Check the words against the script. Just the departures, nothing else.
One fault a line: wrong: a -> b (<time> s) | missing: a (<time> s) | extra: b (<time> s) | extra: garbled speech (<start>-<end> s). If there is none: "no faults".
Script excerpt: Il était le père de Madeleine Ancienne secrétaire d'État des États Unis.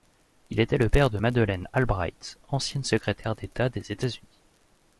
extra: Albright (1.7 s)